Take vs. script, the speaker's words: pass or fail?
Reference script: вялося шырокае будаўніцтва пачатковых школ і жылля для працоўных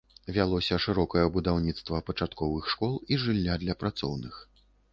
pass